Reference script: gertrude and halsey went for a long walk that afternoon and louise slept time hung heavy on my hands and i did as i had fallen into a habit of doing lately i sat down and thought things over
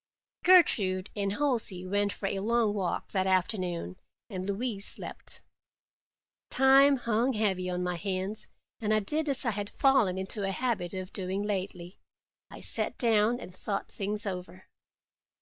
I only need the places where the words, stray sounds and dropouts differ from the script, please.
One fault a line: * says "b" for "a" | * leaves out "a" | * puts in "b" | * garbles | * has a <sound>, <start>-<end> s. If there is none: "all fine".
all fine